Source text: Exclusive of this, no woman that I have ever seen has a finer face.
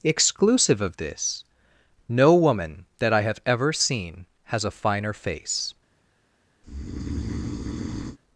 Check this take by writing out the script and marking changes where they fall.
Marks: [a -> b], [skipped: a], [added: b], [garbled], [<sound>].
Exclusive of this, no woman that I have ever seen has a finer face. [breath]